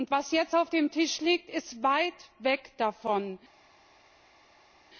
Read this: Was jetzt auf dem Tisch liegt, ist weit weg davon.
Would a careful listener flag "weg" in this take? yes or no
no